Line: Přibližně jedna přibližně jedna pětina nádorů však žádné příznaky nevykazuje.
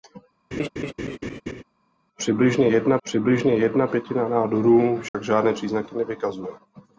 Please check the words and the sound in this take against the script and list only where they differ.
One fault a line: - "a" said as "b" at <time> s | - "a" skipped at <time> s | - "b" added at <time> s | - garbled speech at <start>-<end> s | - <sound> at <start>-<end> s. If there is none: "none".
- laugh at 0.5-1.6 s
- dropout at 5.1-5.1 s